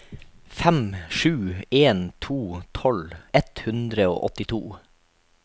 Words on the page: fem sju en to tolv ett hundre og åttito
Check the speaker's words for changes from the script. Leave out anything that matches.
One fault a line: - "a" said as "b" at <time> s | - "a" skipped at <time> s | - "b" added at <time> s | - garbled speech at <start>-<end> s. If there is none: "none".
none